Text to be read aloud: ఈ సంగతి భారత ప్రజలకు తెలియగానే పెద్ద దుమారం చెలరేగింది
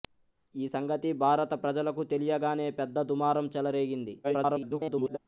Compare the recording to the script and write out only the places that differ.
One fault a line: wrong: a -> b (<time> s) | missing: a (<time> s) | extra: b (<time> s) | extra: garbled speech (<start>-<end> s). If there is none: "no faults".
extra: garbled speech (4.2-5.2 s)